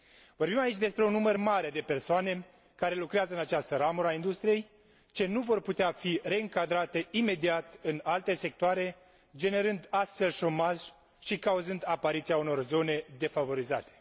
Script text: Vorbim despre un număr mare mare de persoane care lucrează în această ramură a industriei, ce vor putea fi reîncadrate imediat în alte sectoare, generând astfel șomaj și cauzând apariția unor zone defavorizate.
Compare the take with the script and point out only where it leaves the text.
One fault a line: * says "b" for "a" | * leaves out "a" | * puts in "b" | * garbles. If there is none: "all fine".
* puts in "aici"
* leaves out "mare"
* puts in "nu"